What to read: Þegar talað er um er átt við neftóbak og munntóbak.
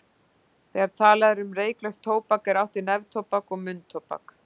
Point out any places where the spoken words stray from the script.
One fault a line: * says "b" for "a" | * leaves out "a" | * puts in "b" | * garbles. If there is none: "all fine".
* puts in "reyklaust tóbak"